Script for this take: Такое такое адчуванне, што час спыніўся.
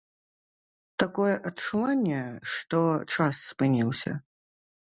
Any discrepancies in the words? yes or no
yes